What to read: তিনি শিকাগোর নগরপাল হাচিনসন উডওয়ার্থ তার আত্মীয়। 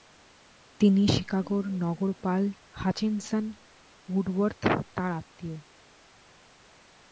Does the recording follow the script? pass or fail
pass